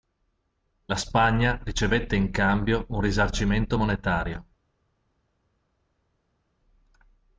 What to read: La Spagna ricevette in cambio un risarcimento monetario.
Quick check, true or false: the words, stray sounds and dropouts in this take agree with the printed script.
true